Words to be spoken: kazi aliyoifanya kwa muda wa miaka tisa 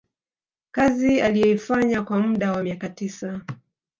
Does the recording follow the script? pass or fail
pass